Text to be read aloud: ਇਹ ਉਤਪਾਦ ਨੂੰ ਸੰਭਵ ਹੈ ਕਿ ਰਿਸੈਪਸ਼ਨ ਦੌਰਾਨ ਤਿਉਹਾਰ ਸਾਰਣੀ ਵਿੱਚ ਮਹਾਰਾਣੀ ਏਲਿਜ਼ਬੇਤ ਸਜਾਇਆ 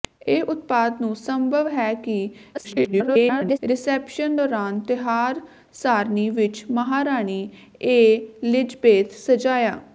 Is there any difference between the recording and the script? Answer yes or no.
yes